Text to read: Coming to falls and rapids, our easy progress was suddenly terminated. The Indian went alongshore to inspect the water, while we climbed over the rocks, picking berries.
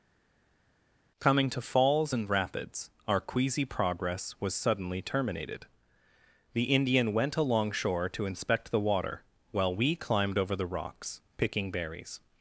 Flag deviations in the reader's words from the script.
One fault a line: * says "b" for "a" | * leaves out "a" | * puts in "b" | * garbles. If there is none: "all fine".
* says "queasy" for "easy"